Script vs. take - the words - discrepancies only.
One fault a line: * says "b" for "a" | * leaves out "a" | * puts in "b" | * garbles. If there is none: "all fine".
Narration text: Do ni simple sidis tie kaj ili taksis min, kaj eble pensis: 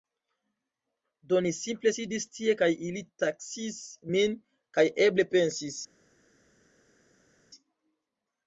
all fine